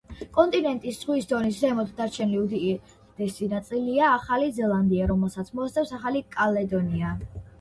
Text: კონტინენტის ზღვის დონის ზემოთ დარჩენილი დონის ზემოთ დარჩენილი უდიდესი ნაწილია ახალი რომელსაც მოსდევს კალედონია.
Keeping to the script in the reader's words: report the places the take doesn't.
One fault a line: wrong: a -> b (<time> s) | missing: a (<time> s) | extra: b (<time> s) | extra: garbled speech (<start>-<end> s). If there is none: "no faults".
missing: დონის ზემოთ დარჩენილი (2.4 s)
extra: ზელანდია (4.6 s)
extra: ახალი (6.0 s)